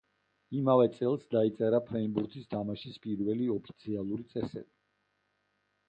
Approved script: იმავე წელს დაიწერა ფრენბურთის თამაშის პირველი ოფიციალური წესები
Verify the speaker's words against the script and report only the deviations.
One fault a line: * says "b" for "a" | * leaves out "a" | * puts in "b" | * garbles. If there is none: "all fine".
all fine